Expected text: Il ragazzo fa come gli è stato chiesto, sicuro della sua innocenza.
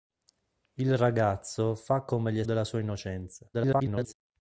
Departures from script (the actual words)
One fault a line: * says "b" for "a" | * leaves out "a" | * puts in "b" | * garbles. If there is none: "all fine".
* leaves out "stato chiesto sicuro"
* garbles